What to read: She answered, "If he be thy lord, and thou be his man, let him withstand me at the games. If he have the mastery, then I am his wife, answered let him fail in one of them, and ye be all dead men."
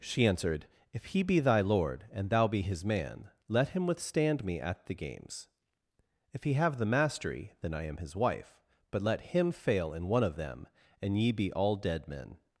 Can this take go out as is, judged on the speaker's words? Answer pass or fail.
fail